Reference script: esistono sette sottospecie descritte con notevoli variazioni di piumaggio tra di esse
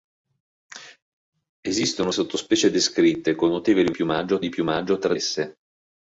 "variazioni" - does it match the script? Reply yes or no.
no